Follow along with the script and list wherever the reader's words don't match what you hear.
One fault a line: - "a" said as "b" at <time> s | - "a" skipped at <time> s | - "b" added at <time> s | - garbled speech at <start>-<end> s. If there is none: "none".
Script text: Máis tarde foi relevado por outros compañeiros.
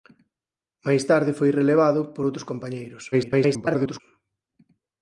- garbled speech at 3.1-4.0 s